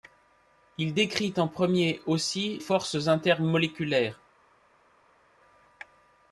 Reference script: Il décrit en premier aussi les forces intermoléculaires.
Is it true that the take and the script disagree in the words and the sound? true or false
true